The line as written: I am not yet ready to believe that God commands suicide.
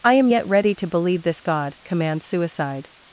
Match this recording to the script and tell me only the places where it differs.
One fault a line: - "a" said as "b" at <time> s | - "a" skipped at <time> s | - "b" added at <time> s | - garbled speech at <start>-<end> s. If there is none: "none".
- "not" skipped at 0.3 s
- "that" said as "this" at 1.2 s